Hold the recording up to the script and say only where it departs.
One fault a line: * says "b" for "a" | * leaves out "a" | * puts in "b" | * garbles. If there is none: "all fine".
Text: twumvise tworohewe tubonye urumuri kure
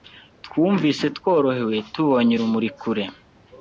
all fine